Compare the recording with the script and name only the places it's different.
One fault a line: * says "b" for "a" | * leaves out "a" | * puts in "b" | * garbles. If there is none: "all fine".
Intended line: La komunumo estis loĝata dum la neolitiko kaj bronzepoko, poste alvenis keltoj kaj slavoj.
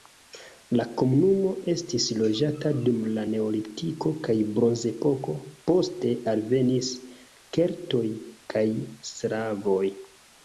all fine